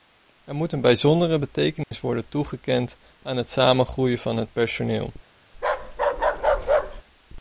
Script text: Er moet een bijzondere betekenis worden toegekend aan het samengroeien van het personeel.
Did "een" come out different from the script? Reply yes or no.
no